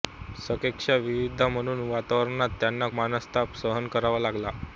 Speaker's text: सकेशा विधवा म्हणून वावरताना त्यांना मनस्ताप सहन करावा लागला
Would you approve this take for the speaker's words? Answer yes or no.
yes